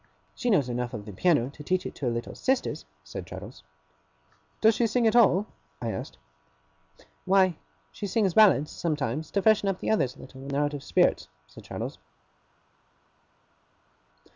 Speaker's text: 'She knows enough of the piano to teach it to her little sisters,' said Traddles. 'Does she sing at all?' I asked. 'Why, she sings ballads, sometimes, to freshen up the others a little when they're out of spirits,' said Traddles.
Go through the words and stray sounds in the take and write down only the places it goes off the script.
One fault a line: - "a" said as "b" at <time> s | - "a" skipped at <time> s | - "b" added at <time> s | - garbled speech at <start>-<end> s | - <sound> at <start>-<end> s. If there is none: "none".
none